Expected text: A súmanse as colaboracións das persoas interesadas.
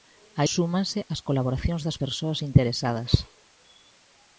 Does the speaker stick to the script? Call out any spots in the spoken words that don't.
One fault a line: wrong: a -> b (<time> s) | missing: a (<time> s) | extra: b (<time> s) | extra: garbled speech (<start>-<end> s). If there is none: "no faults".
no faults